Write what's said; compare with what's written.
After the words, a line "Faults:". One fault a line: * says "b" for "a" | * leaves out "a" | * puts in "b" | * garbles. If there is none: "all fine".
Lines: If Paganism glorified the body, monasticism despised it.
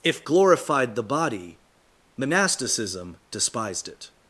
If Glorified the body, monasticism despised it.
Faults:
* leaves out "Paganism"